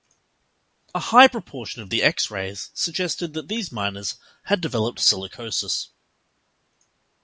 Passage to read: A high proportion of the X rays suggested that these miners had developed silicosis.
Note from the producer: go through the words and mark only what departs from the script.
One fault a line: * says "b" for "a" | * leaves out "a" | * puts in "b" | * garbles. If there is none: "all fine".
all fine